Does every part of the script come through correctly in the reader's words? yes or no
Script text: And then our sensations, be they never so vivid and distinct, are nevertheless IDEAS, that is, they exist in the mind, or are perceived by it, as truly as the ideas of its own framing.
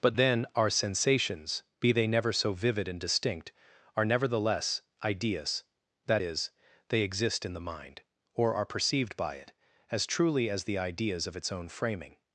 no